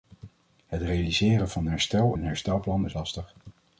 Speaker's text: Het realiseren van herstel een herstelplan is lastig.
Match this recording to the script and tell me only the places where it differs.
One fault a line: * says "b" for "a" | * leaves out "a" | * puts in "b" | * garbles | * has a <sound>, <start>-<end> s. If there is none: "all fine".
all fine